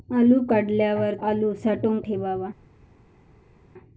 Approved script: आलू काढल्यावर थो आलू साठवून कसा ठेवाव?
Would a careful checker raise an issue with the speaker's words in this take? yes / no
yes